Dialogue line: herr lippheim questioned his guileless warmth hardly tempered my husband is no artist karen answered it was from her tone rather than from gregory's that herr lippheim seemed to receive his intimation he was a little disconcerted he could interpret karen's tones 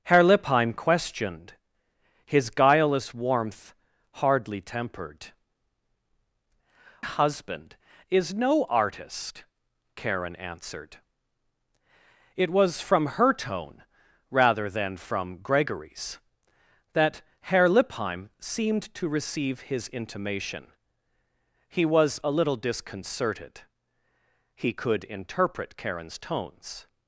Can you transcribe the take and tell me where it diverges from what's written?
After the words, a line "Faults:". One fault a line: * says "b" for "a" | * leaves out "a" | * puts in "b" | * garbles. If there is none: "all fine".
herr lippheim questioned his guileless warmth hardly tempered husband is no artist karen answered it was from her tone rather than from gregory's that herr lippheim seemed to receive his intimation he was a little disconcerted he could interpret karen's tones
Faults:
* leaves out "my"